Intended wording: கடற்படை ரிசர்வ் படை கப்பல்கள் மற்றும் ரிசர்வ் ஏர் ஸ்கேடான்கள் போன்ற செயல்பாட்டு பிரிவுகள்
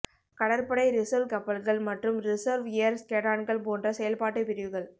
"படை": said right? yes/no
no